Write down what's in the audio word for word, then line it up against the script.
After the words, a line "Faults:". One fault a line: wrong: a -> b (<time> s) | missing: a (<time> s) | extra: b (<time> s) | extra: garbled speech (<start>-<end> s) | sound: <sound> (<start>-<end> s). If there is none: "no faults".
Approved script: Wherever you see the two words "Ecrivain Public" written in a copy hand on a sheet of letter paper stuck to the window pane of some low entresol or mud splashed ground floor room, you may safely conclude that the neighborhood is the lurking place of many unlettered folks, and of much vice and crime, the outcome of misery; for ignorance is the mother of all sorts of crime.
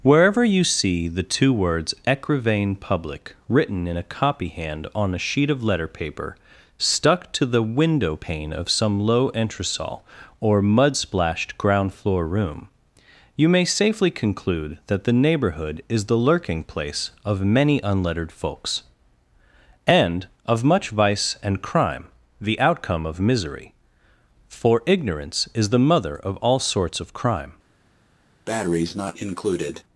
Wherever you see the two words "Ecrivain Public" written in a copy hand on a sheet of letter paper stuck to the window pane of some low entresol or mud splashed ground floor room, you may safely conclude that the neighborhood is the lurking place of many unlettered folks, and of much vice and crime, the outcome of misery; for ignorance is the mother of all sorts of crime.
Faults:
sound: breath (28.5-29.8 s)